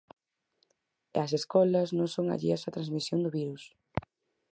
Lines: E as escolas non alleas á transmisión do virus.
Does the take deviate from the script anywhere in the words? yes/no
yes